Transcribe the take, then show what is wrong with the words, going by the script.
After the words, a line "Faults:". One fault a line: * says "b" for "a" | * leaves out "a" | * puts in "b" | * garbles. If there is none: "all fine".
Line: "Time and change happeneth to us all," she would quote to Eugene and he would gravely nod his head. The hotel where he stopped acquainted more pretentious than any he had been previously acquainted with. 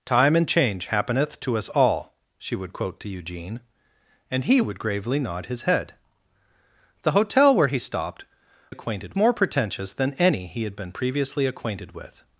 "Time and change happeneth to us all," she would quote to Eugene and he would gravely nod his head. The hotel where he stopped acquainted more pretentious than any he had been previously acquainted with.
Faults:
all fine